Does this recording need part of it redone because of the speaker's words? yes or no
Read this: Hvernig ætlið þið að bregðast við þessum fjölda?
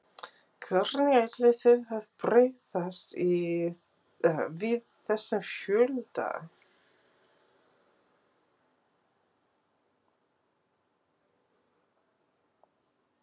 no